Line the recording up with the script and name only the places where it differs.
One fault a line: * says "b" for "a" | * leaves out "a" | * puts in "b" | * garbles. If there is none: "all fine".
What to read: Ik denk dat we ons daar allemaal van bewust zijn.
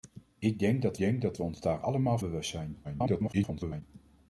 * puts in "denk dat"
* leaves out "van"
* garbles